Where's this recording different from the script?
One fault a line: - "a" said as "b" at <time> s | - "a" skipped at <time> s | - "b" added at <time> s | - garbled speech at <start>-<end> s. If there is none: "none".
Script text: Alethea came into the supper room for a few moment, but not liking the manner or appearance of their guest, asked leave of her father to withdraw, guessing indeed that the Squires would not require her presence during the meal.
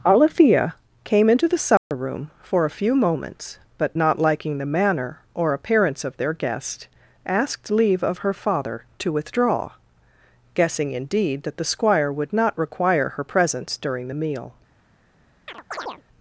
- "moment" said as "moments" at 3.0 s
- "Squires" said as "Squire" at 11.6 s